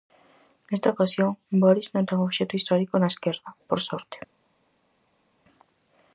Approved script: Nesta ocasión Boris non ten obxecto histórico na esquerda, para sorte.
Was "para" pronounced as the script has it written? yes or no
no